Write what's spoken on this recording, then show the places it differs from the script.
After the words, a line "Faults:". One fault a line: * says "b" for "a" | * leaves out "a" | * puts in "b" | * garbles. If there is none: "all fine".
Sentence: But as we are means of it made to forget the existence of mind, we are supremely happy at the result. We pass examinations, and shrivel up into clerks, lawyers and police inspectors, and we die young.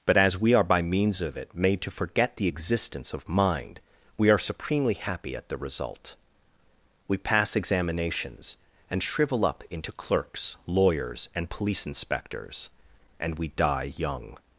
But as we are by means of it made to forget the existence of mind, we are supremely happy at the result. We pass examinations, and shrivel up into clerks, lawyers and police inspectors, and we die young.
Faults:
* puts in "by"